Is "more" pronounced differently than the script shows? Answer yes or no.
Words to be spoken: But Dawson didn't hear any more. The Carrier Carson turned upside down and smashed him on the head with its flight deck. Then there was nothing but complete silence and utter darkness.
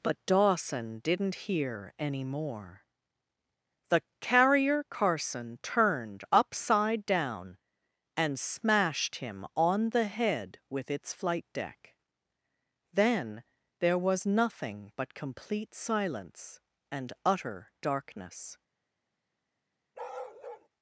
no